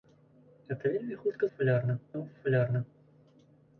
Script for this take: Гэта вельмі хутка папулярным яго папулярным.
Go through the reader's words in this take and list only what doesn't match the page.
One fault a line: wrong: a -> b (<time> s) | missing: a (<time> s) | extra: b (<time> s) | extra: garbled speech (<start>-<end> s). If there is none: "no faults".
no faults